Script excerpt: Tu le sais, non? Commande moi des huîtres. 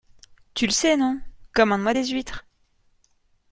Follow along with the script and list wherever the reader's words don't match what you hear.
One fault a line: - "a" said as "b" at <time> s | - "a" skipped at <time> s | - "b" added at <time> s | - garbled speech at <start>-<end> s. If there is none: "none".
none